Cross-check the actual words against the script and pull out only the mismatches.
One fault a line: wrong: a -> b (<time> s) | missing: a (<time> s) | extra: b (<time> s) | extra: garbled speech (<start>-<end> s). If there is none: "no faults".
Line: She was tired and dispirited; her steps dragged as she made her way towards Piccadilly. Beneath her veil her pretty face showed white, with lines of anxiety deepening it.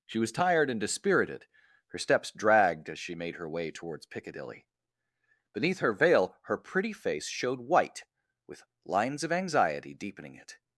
no faults